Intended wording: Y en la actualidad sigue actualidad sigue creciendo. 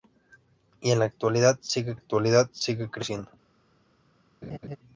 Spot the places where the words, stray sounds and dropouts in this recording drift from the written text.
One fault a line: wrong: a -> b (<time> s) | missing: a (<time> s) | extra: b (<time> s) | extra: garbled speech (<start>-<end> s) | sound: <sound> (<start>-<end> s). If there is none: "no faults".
sound: laugh (4.4-4.8 s)